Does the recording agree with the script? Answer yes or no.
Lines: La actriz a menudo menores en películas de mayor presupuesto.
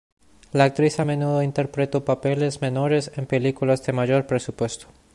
no